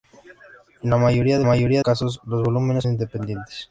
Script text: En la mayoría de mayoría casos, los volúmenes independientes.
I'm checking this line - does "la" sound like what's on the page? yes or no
yes